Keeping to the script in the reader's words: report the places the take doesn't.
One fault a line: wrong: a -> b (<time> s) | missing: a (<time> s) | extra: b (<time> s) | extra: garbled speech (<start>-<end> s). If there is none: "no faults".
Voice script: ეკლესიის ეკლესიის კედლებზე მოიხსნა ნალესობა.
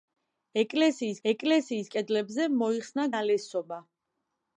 no faults